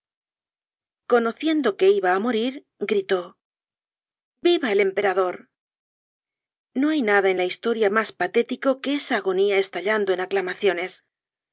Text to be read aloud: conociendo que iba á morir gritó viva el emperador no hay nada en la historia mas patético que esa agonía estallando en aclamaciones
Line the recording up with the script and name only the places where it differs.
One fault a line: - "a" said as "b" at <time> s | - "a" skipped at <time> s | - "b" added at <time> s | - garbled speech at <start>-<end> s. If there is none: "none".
none